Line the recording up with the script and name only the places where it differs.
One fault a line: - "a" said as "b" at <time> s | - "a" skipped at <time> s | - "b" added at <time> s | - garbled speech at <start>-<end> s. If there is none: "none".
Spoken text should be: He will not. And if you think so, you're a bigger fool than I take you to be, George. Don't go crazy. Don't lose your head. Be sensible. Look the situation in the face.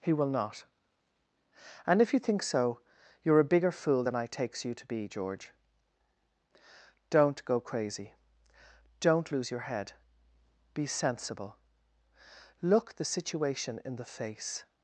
- "take" said as "takes" at 4.3 s